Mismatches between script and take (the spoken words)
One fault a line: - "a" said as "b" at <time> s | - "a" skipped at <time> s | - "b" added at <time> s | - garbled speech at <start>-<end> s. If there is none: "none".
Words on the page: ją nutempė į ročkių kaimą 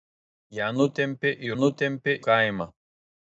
- "ročkių" said as "nutempė" at 1.6 s